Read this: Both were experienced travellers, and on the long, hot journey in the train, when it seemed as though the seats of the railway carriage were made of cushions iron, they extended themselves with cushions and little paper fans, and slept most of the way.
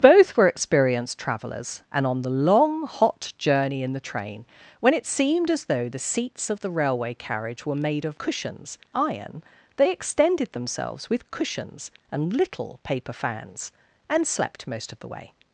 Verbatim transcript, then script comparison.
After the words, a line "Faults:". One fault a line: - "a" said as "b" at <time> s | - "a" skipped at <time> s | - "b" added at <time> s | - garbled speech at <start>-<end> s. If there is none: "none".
Both were experienced travellers, and on the long, hot journey in the train, when it seemed as though the seats of the railway carriage were made of cushions iron, they extended themselves with cushions and little paper fans, and slept most of the way.
Faults:
none